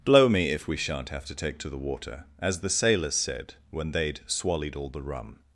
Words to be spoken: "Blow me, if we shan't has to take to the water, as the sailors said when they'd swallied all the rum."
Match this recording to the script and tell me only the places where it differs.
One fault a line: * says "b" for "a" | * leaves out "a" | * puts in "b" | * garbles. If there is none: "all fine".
* says "have" for "has"